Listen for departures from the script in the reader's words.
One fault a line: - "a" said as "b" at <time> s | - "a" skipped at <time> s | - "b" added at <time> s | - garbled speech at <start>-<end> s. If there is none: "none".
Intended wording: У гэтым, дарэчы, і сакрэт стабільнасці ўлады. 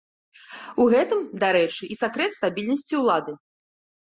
none